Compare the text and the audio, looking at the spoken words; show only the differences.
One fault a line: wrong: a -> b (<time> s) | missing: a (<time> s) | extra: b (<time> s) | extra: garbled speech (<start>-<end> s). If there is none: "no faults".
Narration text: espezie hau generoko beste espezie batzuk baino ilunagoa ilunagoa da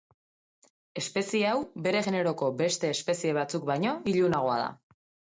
extra: bere (1.9 s)
missing: ilunagoa (4.6 s)